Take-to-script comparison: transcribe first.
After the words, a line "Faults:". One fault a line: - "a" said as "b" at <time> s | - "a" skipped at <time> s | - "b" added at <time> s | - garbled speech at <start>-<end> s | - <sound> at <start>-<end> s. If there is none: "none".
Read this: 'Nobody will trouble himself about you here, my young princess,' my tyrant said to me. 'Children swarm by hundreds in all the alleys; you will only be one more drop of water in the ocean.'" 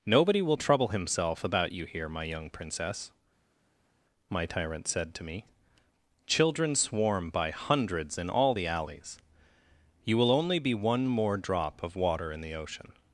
'Nobody will trouble himself about you here, my young princess,' my tyrant said to me. 'Children swarm by hundreds in all the alleys; you will only be one more drop of water in the ocean.'"
Faults:
none